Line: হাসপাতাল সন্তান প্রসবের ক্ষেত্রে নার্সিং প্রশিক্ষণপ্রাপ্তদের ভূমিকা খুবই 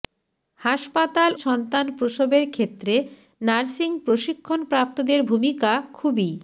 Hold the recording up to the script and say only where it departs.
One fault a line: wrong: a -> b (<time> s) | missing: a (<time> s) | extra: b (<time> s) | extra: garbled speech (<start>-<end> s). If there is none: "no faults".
no faults